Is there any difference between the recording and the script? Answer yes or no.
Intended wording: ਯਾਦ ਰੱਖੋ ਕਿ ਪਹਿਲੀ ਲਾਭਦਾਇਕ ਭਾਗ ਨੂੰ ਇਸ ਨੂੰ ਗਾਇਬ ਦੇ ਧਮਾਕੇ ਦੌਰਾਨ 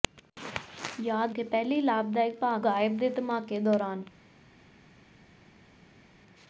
yes